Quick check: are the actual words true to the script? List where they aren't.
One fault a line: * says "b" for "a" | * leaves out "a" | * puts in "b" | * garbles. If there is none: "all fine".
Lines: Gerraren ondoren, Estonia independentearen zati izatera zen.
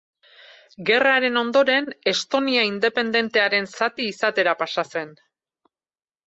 * puts in "pasa"